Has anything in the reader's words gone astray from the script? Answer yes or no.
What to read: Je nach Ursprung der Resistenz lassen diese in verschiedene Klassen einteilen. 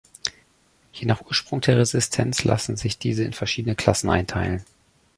yes